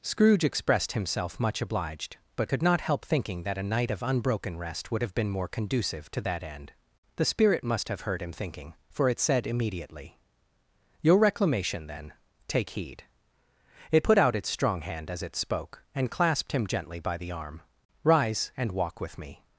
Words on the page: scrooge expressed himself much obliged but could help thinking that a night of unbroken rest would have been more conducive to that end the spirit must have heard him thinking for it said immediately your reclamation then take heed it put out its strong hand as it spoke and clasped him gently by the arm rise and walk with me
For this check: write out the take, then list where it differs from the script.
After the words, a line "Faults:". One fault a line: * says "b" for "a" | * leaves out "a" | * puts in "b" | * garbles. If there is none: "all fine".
scrooge expressed himself much obliged but could not help thinking that a night of unbroken rest would have been more conducive to that end the spirit must have heard him thinking for it said immediately your reclamation then take heed it put out its strong hand as it spoke and clasped him gently by the arm rise and walk with me
Faults:
* puts in "not"